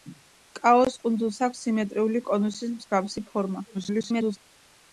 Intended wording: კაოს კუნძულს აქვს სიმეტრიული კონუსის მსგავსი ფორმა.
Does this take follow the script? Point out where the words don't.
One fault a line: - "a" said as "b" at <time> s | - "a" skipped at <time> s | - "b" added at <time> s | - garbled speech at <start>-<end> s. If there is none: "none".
- garbled speech at 3.7-4.4 s